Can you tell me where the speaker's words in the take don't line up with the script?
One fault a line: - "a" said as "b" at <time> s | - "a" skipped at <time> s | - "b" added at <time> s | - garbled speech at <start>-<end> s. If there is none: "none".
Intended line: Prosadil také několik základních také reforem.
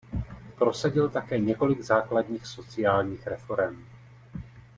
- "také" said as "sociálních" at 2.5 s